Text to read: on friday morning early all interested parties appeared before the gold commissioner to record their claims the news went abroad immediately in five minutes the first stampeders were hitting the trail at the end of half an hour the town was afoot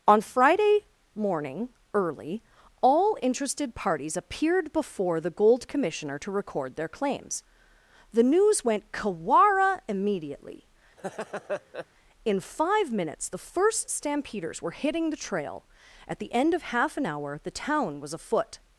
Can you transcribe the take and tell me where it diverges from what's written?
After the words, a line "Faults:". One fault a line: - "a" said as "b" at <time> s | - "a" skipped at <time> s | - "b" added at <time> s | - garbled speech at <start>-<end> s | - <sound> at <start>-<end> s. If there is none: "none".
on friday morning early all interested parties appeared before the gold commissioner to record their claims the news went kawara immediately in five minutes the first stampeders were hitting the trail at the end of half an hour the town was afoot
Faults:
- "abroad" said as "kawara" at 8.9 s
- laugh at 11.0-11.9 s